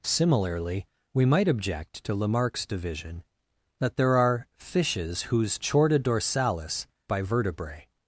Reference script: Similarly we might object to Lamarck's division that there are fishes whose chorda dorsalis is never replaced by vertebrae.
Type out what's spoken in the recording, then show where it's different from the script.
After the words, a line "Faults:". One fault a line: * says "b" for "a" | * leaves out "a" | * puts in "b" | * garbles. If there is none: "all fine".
Similarly we might object to Lamarck's division that there are fishes whose chorda dorsalis by vertebrae.
Faults:
* leaves out "is never replaced"